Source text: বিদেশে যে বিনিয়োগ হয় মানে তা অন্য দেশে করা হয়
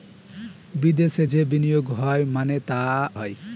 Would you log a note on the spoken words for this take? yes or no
yes